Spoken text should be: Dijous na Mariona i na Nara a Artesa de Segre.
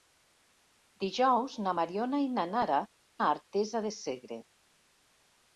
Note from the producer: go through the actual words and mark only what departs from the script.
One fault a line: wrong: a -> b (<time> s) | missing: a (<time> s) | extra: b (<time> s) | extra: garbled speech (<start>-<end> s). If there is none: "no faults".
no faults